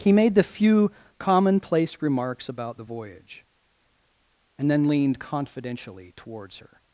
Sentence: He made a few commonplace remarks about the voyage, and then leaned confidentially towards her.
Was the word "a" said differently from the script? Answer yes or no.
yes